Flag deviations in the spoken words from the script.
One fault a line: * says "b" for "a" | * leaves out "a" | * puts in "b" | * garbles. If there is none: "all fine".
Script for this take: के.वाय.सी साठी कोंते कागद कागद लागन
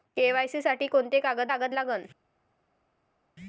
all fine